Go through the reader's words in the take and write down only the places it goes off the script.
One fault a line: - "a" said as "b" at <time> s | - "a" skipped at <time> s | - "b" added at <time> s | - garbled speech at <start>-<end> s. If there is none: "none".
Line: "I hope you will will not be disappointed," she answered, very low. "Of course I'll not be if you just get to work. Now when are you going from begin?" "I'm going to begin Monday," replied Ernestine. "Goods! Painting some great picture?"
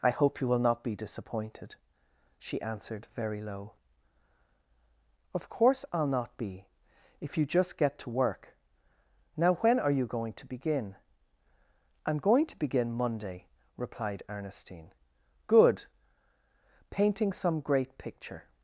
- "will" skipped at 0.6 s
- "from" said as "to" at 10.3 s
- "Goods" said as "Good" at 15.5 s